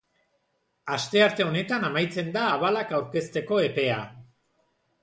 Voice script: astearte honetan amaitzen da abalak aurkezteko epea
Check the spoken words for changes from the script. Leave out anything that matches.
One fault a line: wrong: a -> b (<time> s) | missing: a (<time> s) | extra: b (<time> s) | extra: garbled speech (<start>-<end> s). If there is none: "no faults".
no faults